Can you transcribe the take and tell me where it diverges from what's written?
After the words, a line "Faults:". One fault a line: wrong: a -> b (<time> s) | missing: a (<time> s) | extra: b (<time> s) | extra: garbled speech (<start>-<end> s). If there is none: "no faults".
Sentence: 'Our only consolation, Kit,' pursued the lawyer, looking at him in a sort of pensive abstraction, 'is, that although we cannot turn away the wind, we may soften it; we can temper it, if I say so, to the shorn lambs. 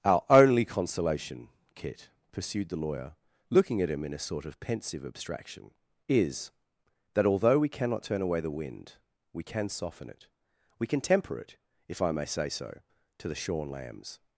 'Our only consolation, Kit,' pursued the lawyer, looking at him in a sort of pensive abstraction, 'is, that although we cannot turn away the wind, we can soften it; we can temper it, if I may say so, to the shorn lambs.
Faults:
wrong: may -> can (9.4 s)
extra: may (12.1 s)